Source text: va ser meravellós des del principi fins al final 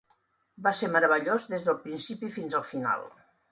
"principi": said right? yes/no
yes